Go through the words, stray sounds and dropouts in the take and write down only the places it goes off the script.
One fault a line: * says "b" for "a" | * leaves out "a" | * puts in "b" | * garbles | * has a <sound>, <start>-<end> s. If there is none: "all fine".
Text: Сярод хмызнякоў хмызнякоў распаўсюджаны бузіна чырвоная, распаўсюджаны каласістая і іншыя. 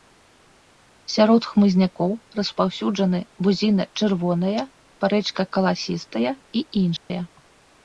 * leaves out "хмызнякоў"
* says "парэчка" for "распаўсюджаны"
* has a dropout, 7.0-7.1 s